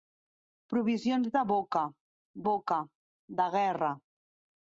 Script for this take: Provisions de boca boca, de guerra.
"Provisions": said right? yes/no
yes